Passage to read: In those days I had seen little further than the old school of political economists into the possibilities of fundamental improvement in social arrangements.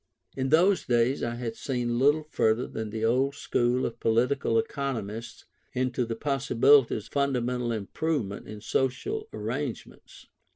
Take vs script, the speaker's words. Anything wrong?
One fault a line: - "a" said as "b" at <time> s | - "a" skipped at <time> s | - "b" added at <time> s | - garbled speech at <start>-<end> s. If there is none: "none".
- "of" skipped at 7.1 s